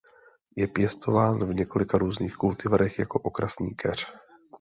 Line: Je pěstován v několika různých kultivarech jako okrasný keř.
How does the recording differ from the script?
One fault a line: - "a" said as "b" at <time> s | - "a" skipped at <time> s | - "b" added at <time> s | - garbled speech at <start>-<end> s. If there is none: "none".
none